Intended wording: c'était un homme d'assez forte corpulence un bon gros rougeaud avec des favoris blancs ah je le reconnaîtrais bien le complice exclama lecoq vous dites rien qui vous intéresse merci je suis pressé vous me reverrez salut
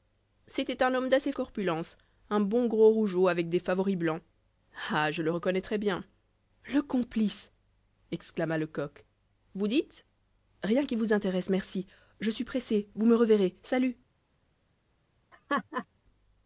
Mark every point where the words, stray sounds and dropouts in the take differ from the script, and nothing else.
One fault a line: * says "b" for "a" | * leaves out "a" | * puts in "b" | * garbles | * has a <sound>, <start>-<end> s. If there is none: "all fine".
* leaves out "forte"
* has a laugh, 15.3-15.9 s